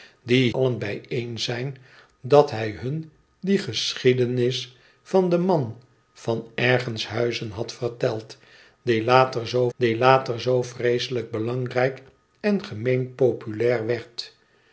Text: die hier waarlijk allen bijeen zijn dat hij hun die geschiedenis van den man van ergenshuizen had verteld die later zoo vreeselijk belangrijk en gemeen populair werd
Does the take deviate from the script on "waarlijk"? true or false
true